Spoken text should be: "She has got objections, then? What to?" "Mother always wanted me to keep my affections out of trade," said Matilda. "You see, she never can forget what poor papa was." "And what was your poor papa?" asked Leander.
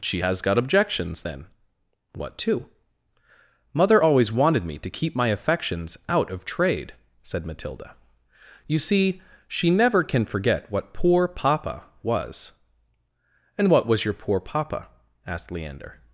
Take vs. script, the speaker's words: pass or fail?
pass